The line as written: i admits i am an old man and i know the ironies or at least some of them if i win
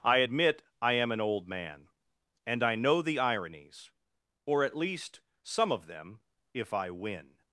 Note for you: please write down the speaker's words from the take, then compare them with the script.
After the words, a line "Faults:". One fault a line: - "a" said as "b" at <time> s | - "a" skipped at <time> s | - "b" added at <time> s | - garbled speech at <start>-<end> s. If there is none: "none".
i admit i am an old man and i know the ironies or at least some of them if i win
Faults:
- "admits" said as "admit" at 0.2 s